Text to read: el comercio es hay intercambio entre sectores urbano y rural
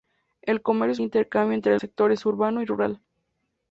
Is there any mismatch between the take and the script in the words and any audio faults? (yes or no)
no